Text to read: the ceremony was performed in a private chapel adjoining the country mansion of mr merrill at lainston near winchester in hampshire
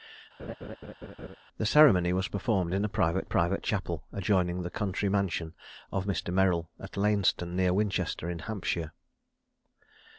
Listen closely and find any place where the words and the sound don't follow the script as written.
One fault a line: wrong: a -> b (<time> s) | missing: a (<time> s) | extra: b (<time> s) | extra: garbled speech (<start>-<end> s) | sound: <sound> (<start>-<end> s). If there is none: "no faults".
sound: laugh (0.4-1.4 s)
extra: private (3.2 s)